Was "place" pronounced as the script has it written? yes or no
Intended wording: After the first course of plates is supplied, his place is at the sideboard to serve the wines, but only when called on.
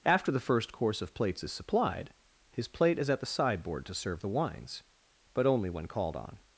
no